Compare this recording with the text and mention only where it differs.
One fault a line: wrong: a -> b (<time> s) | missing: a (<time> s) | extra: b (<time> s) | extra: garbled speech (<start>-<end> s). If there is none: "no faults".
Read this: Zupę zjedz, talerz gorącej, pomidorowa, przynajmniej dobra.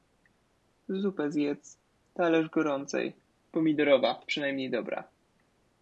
no faults